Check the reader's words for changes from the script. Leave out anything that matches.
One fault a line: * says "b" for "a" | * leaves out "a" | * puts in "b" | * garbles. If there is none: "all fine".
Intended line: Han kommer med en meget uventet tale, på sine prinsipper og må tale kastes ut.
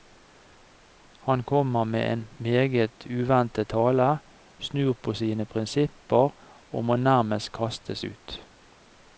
* puts in "snur"
* says "nærmest" for "tale"